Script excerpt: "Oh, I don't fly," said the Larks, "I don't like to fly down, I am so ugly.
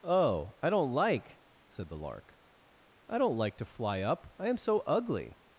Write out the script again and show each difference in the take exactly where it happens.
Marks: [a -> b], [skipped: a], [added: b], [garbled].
"Oh, I don't [fly," -> like] said the [Larks, -> Lark] "I don't like to fly [down, -> up] I am so ugly.